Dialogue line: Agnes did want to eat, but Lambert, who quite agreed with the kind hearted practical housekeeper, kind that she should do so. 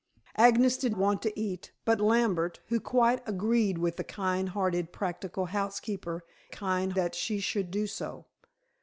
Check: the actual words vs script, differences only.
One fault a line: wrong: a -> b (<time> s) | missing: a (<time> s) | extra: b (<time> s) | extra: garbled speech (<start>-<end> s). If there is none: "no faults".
no faults